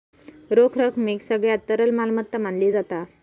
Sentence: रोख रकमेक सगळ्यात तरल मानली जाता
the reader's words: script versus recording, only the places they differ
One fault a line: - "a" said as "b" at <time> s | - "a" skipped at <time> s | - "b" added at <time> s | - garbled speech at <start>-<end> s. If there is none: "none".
- "मालमत्ता" added at 1.9 s